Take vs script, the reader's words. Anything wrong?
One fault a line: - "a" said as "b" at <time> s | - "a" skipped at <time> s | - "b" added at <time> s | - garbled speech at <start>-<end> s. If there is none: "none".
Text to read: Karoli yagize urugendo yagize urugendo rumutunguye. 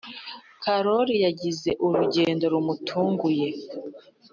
- "yagize urugendo" skipped at 2.5 s